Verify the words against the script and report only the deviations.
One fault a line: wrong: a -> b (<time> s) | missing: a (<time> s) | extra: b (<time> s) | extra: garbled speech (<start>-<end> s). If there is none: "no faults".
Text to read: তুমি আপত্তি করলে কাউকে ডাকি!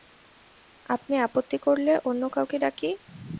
wrong: তুমি -> আপনি (0.8 s)
extra: অন্য (2.1 s)